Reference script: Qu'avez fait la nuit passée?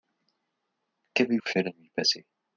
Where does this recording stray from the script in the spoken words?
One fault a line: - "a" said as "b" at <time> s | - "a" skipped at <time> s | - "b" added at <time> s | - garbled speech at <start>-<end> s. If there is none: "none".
none